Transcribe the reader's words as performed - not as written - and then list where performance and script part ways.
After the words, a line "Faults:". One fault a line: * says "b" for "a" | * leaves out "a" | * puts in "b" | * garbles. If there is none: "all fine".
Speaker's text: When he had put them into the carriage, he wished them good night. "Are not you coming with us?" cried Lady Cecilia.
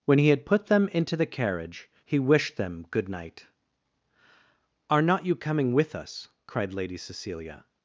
When he had put them into the carriage, he wished them good night. "Are not you coming with us?" cried Lady Cecilia.
Faults:
all fine